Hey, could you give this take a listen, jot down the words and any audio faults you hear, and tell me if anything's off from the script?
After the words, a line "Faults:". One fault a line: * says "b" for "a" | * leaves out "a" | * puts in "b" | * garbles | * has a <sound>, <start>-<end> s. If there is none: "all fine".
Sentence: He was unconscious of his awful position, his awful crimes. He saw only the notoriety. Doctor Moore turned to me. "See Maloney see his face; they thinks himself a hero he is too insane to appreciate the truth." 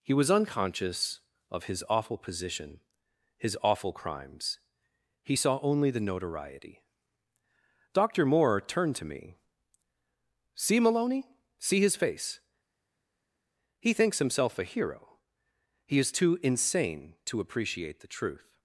He was unconscious of his awful position, his awful crimes. He saw only the notoriety. Doctor Moore turned to me. "See Maloney see his face; he thinks himself a hero he is too insane to appreciate the truth."
Faults:
* says "he" for "they"